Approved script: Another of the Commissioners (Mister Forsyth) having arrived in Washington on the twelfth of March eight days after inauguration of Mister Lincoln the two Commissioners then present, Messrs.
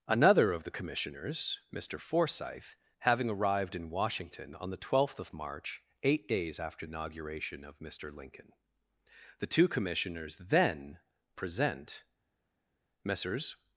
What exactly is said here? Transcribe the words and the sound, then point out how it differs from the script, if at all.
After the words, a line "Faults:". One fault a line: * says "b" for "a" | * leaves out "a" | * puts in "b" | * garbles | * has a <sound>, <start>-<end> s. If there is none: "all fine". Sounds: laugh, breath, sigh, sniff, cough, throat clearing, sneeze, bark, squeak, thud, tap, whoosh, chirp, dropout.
Another of the Commissioners (Mister Forsyth) having arrived in Washington on the twelfth of March eight days after inauguration of Mister Lincoln the two Commissioners then present, Messrs.
Faults:
all fine